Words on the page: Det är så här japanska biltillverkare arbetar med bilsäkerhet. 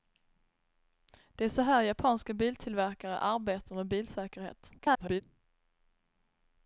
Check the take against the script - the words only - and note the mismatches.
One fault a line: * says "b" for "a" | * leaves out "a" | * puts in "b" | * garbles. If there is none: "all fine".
* garbles